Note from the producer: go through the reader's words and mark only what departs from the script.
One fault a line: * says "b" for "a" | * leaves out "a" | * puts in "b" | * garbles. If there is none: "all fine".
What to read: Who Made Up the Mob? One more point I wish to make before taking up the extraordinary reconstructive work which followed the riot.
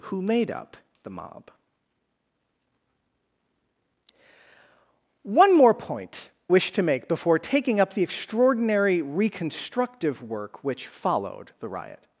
* leaves out "I"